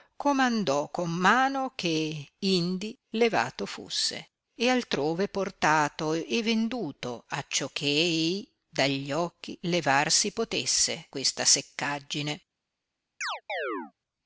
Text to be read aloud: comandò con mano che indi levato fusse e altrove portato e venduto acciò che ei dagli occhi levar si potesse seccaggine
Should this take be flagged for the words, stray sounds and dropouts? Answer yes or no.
yes